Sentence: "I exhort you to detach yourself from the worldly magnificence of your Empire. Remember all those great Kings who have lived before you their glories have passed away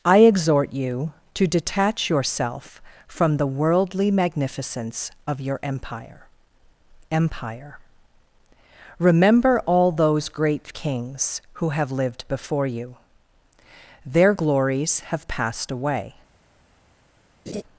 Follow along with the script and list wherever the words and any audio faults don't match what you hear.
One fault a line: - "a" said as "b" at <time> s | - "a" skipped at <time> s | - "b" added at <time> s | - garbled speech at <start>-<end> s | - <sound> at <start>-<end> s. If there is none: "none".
- "Empire" added at 7.1 s
- laugh at 17.5-17.6 s